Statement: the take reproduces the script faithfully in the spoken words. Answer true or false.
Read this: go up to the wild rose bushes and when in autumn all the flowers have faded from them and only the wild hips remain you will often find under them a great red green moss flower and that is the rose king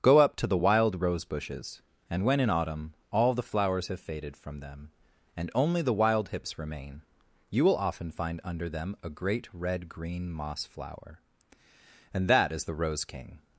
true